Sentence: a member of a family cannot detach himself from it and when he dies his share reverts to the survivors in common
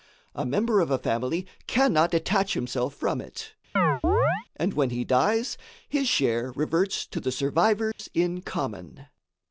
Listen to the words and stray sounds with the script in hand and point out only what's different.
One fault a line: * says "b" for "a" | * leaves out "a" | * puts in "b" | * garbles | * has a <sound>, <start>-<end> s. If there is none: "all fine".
* has a chirp, 3.8-4.5 s
* has a dropout, 7.9-8.0 s